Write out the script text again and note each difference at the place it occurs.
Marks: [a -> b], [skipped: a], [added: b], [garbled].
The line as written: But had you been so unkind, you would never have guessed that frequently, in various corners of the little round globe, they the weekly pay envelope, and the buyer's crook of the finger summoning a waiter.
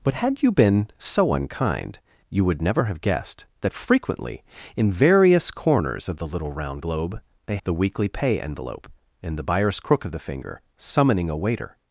But had you been so unkind, you would never have guessed that frequently, in various corners of the little round globe, they the weekly pay envelope, and the buyer's crook of the finger summoning a waiter.